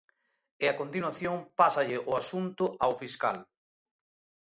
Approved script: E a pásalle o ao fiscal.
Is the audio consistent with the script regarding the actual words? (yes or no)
no